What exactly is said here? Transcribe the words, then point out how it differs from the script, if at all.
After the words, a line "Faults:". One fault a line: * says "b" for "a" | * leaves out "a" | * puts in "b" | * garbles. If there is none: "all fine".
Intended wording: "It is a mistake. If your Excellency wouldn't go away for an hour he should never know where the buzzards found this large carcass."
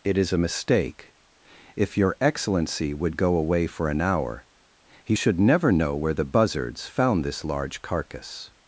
"It is a mistake. If your Excellency would go away for an hour he should never know where the buzzards found this large carcass."
Faults:
* says "would" for "wouldn't"